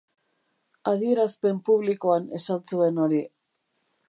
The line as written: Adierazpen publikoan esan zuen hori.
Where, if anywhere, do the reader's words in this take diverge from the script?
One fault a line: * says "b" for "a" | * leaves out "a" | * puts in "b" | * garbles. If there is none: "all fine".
all fine